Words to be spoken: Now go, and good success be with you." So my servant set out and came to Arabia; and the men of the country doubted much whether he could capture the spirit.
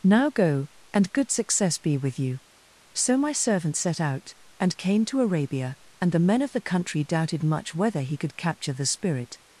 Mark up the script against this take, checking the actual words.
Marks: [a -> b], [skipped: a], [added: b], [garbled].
Now go, and good success be with you." So my servant set out and came to Arabia; and the men of the country doubted much whether he could capture the spirit.